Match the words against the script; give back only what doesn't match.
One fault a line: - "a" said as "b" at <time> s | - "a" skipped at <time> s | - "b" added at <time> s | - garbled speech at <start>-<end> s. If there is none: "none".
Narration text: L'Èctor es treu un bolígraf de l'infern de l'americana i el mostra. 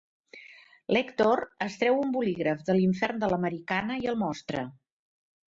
none